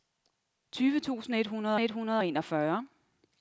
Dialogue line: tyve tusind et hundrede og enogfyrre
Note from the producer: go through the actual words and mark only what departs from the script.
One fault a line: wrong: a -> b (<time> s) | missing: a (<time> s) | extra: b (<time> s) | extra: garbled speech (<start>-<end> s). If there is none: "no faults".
extra: et hundrede (1.8 s)